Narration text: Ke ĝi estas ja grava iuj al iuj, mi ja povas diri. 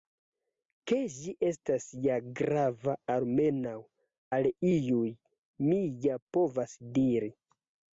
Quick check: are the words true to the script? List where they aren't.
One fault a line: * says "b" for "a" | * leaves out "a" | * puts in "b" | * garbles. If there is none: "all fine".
* says "almenaŭ" for "iuj"